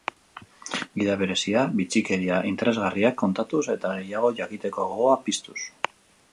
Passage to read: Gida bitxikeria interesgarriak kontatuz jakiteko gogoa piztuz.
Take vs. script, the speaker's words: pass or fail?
fail